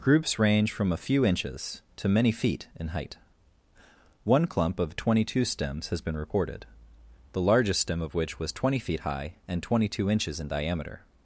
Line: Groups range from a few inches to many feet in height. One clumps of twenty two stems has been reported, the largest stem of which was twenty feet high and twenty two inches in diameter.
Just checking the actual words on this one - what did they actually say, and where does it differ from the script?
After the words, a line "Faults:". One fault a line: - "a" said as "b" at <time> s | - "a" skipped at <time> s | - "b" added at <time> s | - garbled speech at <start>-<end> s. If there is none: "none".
Groups range from a few inches to many feet in height. One clump of twenty two stems has been reported, the largest stem of which was twenty feet high and twenty two inches in diameter.
Faults:
- "clumps" said as "clump" at 4.5 s